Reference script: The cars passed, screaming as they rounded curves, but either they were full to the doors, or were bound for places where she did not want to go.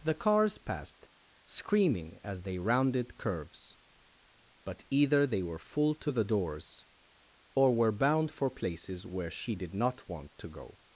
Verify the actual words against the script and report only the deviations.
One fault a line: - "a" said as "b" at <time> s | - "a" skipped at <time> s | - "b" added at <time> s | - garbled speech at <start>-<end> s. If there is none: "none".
none